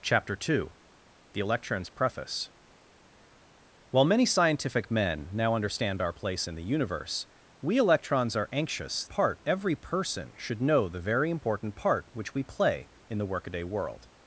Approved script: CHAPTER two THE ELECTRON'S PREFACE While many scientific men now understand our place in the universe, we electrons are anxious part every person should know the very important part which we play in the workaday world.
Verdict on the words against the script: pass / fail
pass